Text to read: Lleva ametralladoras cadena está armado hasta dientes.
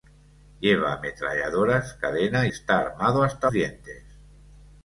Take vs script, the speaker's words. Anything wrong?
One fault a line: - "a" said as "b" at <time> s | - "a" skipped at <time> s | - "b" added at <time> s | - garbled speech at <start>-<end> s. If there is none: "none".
none